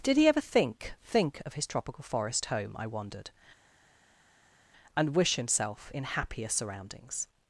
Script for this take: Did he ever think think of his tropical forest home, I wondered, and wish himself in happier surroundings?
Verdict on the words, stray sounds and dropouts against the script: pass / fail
pass